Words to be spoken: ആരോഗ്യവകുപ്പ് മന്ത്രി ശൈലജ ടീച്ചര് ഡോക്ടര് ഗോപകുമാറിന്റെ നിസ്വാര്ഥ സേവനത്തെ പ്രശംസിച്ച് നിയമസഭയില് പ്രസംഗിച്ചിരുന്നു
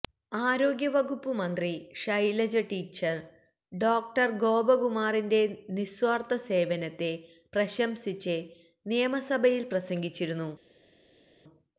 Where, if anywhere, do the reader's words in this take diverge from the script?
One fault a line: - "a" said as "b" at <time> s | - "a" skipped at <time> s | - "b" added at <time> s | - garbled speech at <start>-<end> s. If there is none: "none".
none